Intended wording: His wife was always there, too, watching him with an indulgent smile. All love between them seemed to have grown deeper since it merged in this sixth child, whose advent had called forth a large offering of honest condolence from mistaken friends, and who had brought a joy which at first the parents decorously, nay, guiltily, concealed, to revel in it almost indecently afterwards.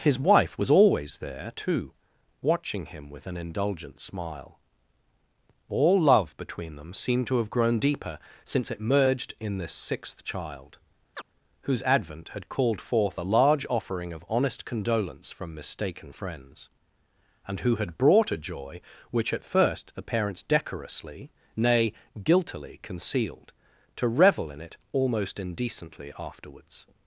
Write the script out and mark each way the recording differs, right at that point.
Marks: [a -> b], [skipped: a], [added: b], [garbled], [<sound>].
His wife was always there, too, watching him with an indulgent smile. All love between them seemed to have grown deeper since it merged in this sixth child, [chirp] whose advent had called forth a large offering of honest condolence from mistaken friends, and who had brought a joy which at first the parents decorously, nay, guiltily, concealed, to revel in it almost indecently afterwards.